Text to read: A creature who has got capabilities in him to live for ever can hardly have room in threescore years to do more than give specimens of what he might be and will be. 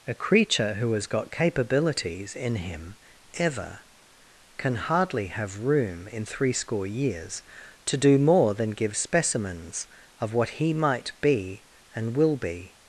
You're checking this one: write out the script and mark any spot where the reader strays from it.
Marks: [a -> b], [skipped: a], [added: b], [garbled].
A creature who has got capabilities in him [skipped: to live for] ever can hardly have room in threescore years to do more than give specimens of what he might be and will be.